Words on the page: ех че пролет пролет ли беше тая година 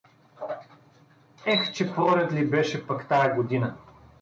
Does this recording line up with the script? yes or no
no